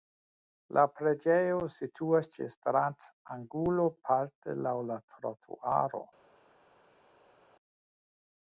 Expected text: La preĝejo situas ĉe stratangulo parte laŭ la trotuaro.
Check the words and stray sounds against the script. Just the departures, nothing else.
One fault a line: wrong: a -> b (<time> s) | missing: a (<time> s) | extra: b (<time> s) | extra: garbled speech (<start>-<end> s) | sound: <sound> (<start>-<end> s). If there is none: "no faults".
no faults